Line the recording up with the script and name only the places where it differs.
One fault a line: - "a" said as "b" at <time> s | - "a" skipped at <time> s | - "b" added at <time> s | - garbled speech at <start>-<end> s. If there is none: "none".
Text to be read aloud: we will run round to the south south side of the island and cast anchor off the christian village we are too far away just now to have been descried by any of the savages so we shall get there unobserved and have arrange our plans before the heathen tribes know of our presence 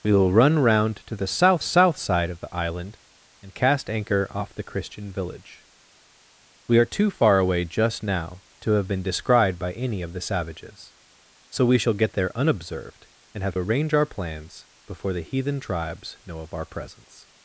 none